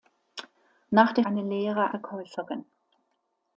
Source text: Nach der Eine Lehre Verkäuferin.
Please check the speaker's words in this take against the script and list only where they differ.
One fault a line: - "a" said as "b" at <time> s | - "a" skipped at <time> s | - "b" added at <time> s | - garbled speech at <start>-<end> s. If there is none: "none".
none